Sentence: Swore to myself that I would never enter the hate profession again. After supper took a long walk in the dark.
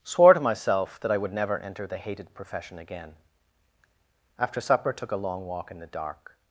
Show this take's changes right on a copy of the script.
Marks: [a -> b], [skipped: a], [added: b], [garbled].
Swore to myself that I would never enter the [hate -> hated] profession again. After supper took a long walk in the dark.